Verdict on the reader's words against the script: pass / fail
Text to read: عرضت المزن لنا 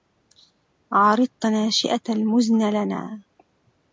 fail